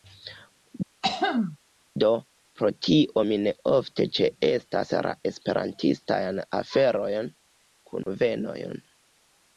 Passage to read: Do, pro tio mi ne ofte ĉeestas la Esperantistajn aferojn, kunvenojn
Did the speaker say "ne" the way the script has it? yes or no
yes